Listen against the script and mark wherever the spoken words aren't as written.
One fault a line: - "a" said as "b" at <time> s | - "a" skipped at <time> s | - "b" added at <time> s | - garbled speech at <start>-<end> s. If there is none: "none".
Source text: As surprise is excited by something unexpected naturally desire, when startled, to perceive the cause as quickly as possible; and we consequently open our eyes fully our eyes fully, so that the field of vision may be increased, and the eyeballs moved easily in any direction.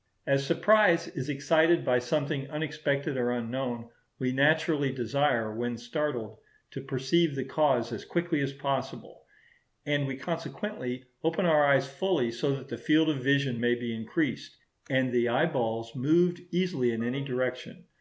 - "or unknown we" added at 3.2 s
- "our eyes fully" skipped at 12.3 s